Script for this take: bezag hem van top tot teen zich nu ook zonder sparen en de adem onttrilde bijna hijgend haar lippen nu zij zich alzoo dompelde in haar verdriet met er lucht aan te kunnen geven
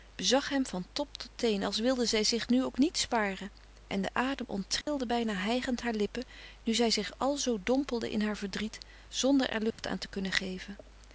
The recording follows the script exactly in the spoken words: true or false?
false